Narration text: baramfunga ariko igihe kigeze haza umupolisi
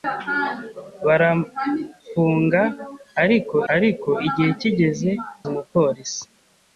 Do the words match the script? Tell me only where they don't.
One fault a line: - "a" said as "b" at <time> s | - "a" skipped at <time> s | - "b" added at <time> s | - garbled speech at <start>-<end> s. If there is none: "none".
- "ariko" added at 3.7 s
- "haza" skipped at 5.1 s